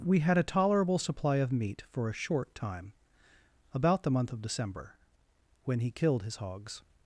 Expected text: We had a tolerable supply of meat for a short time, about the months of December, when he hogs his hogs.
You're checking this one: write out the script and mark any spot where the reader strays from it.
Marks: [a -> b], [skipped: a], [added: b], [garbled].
We had a tolerable supply of meat for a short time, about the [months -> month] of December, when he [hogs -> killed] his hogs.